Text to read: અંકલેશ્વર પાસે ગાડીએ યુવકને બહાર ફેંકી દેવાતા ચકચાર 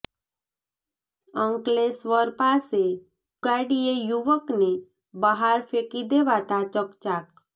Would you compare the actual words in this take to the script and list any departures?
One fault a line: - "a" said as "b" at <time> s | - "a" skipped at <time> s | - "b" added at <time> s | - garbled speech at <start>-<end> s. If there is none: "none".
none